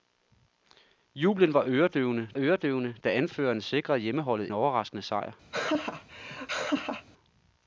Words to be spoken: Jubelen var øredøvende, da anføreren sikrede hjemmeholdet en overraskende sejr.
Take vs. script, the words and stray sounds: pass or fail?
fail